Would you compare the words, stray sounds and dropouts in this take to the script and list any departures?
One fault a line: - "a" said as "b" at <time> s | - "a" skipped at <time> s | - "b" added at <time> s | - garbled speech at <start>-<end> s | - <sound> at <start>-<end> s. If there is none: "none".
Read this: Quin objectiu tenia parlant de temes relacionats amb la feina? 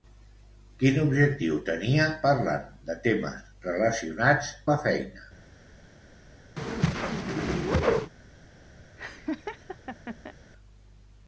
- "amb" skipped at 4.5 s
- whoosh at 6.6-8.1 s
- laugh at 9.0-10.3 s